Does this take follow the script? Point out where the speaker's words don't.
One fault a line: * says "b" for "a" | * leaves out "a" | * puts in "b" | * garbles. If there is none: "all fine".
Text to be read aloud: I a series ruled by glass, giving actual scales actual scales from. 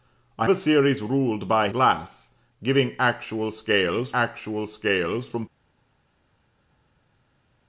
all fine